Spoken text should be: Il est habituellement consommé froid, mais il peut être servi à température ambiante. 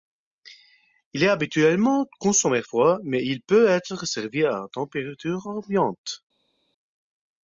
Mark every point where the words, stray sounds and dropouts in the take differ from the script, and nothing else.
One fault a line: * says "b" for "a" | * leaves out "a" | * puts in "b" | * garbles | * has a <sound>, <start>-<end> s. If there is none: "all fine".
all fine